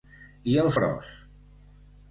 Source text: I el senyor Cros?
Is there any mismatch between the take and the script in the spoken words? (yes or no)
yes